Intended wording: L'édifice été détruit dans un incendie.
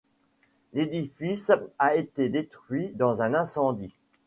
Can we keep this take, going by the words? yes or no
no